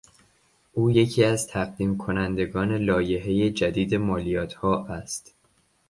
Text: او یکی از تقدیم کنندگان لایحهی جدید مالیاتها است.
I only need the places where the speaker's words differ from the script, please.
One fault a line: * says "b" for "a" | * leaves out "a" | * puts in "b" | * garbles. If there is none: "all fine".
all fine